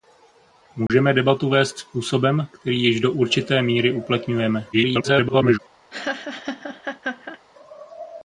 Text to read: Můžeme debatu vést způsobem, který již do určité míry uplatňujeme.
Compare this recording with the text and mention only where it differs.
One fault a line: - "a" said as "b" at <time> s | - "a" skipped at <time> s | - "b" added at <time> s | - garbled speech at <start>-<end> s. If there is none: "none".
- garbled speech at 4.7-5.6 s